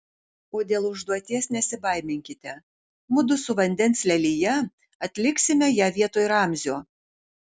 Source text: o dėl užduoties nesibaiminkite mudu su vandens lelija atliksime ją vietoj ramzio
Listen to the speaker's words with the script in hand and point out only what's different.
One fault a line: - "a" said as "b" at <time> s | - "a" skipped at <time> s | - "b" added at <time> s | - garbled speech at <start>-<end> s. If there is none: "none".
none